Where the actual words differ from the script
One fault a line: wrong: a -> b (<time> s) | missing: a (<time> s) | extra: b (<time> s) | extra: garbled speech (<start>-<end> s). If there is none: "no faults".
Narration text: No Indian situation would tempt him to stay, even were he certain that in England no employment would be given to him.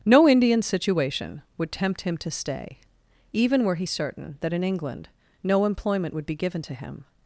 no faults